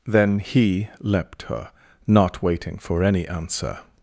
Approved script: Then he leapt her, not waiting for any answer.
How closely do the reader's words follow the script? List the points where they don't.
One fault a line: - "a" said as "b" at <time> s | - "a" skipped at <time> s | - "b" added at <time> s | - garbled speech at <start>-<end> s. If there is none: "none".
none